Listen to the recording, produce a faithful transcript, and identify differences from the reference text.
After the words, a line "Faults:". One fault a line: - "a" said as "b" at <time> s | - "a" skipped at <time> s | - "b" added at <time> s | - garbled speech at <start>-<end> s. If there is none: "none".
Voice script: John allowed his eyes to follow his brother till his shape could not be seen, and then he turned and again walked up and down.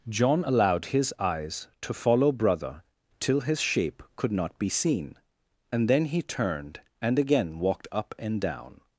John allowed his eyes to follow brother till his shape could not be seen, and then he turned and again walked up and down.
Faults:
- "his" skipped at 2.3 s